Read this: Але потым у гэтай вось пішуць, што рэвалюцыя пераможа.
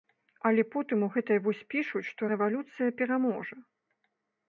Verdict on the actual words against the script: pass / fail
pass